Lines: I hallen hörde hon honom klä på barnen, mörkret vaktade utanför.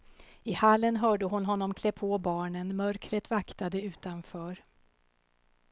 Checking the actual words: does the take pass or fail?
pass